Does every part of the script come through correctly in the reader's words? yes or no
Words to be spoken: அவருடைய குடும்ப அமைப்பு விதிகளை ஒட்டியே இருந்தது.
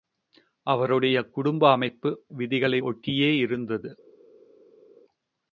yes